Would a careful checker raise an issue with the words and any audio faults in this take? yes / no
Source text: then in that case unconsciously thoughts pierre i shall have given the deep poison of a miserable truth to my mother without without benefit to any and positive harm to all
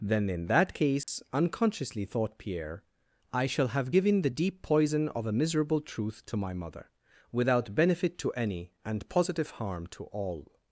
yes